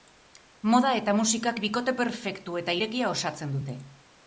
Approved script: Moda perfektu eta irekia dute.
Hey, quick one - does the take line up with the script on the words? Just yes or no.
no